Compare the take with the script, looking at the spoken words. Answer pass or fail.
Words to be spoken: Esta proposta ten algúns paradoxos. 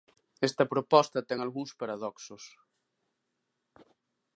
pass